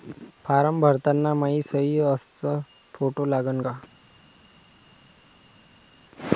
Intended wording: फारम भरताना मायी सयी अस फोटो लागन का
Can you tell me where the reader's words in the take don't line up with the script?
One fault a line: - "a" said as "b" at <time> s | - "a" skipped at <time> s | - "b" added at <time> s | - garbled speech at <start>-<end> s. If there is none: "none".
none